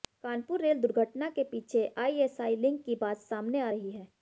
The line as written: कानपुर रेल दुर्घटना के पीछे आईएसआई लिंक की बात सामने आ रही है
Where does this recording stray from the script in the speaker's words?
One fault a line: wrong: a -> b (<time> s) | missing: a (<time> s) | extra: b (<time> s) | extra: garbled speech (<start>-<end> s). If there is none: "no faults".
no faults